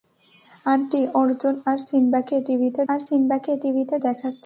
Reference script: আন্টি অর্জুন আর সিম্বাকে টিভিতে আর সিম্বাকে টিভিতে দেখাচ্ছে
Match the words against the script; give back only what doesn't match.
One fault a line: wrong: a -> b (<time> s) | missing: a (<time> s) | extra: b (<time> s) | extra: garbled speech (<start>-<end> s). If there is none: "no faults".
no faults